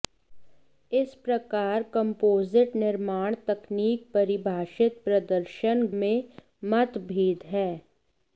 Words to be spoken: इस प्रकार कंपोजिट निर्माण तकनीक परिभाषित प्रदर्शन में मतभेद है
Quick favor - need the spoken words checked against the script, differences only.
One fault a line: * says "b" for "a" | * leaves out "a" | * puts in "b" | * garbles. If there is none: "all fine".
all fine